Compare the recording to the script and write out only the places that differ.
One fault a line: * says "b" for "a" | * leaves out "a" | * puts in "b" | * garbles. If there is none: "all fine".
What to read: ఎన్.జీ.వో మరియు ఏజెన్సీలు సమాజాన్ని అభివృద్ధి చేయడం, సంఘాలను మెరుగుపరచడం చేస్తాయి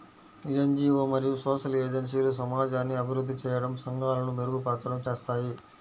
* puts in "సోషల్"